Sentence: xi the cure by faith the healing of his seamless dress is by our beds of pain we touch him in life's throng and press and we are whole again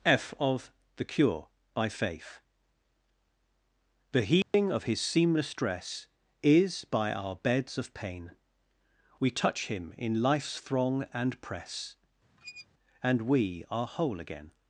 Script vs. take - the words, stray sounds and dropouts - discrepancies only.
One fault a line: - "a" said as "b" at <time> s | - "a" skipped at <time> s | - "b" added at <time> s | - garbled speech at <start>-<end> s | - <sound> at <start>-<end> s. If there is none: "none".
- "xi" said as "f of" at 0.0 s
- dropout at 4.4-4.5 s
- squeak at 12.4-12.7 s